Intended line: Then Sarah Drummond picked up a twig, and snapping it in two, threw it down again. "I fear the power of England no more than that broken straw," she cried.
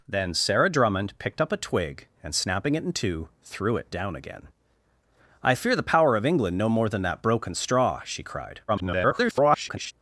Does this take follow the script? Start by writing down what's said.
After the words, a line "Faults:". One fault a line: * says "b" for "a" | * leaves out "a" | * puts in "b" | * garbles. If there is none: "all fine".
Then Sarah Drummond picked up a twig, and snapping it in two, threw it down again. "I fear the power of England no more than that broken straw," she cried. [garbled]
Faults:
* garbles